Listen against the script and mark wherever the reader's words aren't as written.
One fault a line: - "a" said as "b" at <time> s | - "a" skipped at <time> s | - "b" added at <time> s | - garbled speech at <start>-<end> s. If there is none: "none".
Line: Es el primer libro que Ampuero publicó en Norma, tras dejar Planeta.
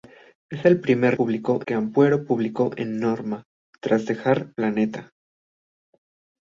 - "libro" said as "publicó" at 1.1 s